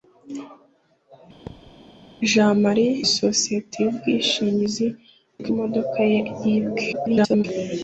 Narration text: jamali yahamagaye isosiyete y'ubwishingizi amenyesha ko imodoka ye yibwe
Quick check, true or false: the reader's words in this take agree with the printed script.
false